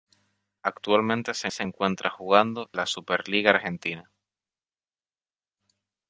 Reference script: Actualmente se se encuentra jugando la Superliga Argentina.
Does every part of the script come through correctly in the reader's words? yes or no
yes